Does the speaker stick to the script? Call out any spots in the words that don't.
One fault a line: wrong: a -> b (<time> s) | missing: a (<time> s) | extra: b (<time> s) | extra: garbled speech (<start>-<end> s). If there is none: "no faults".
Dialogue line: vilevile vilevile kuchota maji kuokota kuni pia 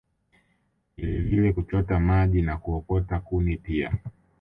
missing: vilevile (1.5 s)
extra: na (2.4 s)